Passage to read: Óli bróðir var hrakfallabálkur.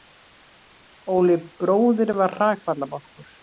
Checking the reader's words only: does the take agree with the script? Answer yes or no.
yes